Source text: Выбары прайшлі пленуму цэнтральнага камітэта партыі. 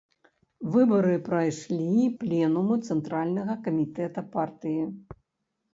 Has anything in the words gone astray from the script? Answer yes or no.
no